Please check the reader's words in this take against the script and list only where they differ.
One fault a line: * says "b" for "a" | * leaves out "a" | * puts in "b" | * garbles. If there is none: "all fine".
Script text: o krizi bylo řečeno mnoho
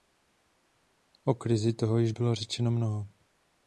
* puts in "toho již"